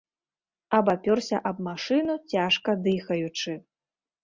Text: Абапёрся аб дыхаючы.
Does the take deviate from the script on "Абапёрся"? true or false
false